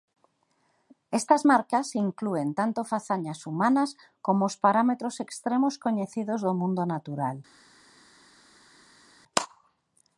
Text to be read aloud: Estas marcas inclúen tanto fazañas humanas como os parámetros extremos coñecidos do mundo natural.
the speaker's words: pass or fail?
pass